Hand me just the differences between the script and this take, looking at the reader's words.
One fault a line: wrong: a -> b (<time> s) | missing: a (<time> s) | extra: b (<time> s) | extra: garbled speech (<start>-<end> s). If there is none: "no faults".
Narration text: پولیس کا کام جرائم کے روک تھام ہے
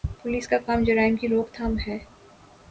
wrong: کے -> کی (1.2 s)